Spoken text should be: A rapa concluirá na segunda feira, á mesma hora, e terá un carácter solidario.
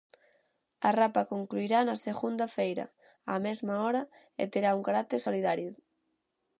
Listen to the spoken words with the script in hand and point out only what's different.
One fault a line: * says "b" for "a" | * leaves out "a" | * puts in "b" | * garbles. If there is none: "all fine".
all fine